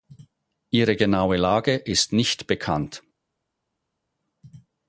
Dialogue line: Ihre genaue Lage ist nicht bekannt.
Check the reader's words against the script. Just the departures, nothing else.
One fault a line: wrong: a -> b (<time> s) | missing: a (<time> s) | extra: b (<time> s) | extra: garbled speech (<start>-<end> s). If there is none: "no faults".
no faults